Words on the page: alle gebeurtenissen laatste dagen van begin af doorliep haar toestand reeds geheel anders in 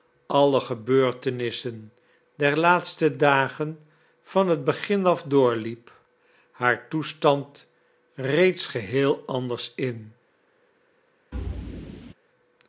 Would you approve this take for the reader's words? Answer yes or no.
no